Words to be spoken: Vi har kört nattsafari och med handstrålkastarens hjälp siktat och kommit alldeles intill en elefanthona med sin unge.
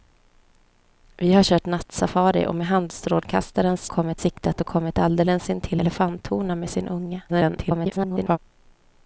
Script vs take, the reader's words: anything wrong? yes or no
yes